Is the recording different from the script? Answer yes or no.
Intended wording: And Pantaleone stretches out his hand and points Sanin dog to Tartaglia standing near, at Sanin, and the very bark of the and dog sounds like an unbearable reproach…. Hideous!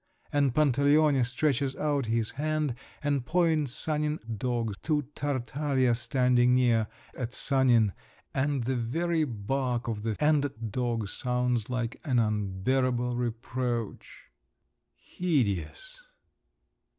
no